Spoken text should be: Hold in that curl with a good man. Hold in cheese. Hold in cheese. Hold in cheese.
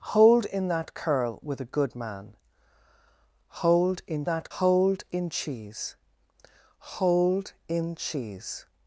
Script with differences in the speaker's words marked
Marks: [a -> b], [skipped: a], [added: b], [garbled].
Hold in that curl with a good man. Hold in [cheese. -> that] Hold in cheese. Hold in cheese.